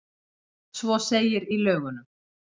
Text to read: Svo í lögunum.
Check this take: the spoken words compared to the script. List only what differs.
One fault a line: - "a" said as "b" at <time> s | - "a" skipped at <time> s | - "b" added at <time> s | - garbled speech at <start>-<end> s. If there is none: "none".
- "segir" added at 1.1 s